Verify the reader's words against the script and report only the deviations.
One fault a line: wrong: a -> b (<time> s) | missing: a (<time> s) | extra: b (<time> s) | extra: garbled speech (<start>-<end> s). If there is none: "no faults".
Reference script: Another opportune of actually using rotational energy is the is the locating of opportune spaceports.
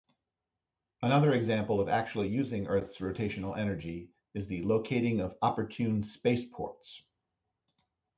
wrong: opportune -> example (1.3 s)
extra: earth's (2.7 s)
missing: is the (4.6 s)